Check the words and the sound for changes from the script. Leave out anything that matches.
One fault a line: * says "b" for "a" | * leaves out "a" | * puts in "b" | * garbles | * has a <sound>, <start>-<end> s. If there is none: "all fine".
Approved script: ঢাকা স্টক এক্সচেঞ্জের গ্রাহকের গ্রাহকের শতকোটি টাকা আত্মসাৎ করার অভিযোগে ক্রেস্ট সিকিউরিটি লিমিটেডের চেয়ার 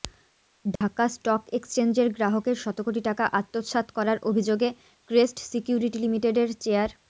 * has a dropout, 0.8-0.8 s
* leaves out "গ্রাহকের"